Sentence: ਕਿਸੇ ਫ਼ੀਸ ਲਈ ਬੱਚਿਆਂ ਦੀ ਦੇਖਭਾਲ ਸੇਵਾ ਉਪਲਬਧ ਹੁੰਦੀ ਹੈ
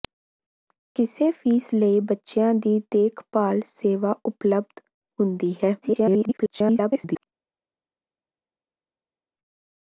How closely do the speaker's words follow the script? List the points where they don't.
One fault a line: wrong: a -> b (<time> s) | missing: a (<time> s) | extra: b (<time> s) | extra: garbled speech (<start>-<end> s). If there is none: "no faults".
extra: garbled speech (5.8-7.2 s)